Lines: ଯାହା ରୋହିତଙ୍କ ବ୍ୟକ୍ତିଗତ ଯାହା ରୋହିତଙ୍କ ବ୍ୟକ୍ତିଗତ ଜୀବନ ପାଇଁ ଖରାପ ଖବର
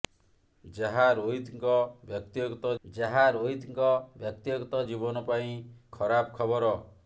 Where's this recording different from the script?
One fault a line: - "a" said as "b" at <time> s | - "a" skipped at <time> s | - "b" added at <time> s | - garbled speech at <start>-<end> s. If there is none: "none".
none